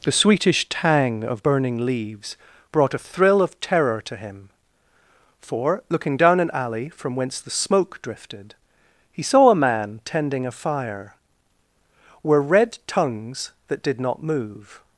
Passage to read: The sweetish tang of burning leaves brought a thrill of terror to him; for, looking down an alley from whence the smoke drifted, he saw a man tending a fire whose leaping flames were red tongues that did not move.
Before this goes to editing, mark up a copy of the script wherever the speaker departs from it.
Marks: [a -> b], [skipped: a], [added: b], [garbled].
The sweetish tang of burning leaves brought a thrill of terror to him; for, looking down an alley from whence the smoke drifted, he saw a man tending a fire [skipped: whose leaping flames] were red tongues that did not move.